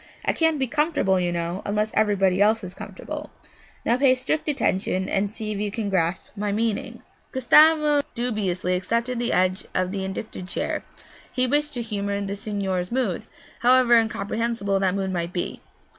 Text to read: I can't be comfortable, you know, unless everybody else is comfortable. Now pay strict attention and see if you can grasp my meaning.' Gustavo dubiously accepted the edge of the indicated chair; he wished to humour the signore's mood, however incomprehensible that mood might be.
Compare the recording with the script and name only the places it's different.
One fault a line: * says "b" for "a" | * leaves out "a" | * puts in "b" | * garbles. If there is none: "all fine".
all fine